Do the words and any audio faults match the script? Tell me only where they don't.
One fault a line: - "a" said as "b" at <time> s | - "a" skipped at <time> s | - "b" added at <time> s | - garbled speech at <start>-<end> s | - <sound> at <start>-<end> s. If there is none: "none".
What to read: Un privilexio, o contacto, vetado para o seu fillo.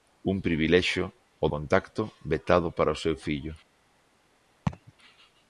- laugh at 4.7-4.9 s